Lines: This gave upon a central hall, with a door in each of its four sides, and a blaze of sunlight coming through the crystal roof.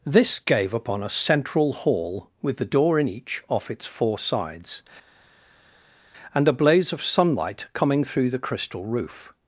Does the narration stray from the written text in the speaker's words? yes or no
yes